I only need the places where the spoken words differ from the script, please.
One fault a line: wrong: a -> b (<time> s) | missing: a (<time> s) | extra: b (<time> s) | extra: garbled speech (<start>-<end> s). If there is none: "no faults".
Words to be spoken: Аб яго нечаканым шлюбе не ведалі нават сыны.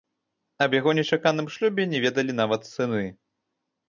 no faults